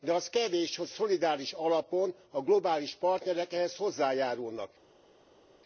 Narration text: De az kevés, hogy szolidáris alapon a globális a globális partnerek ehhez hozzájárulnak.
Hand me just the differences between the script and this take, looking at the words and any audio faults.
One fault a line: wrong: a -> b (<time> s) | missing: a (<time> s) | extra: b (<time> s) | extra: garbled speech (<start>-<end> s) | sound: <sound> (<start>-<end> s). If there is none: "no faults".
missing: a globális (3.0 s)